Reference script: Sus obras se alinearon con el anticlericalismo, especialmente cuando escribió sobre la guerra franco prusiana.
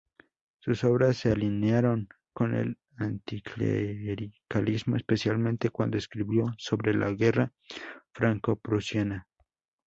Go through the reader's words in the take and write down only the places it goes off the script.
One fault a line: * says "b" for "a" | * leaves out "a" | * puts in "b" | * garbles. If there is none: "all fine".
all fine